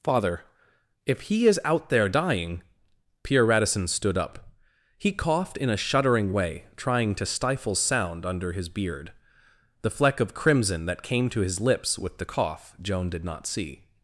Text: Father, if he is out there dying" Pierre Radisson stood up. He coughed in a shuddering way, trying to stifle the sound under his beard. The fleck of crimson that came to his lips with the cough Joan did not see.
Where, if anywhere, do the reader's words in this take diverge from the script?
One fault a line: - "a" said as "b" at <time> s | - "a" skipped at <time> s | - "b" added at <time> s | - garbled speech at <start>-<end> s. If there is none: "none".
- "the" skipped at 7.7 s